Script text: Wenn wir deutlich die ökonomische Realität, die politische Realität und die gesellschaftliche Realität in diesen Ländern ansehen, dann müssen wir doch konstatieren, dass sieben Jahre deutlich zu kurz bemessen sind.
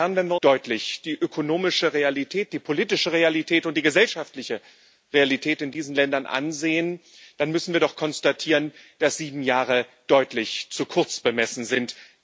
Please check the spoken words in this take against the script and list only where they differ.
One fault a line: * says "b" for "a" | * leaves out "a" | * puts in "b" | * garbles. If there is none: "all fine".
all fine